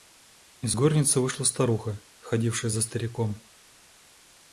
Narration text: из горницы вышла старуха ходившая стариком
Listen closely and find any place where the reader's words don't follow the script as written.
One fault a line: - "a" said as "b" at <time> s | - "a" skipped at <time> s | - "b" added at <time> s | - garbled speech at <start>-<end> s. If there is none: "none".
- "за" added at 2.7 s